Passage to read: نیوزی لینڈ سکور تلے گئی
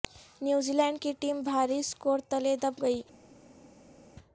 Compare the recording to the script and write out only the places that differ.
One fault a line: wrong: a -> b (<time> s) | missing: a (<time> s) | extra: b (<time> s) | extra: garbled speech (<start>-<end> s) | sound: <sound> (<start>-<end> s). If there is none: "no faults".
extra: کی ٹیم بھاری (1.0 s)
extra: دب (2.6 s)